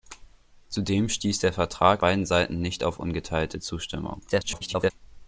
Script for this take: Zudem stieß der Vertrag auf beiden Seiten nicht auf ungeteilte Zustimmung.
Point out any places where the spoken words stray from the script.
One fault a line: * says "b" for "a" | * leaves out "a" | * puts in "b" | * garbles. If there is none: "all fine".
* leaves out "auf"
* garbles